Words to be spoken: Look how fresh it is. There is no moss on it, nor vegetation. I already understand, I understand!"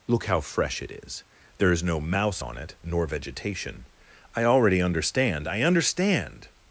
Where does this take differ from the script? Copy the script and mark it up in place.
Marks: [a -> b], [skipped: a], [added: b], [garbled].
Look how fresh it is. There is no [moss -> mouse] on it, nor vegetation. I already understand, I understand!"